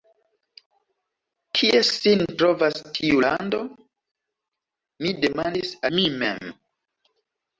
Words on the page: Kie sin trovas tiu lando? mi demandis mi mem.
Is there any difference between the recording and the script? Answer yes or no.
no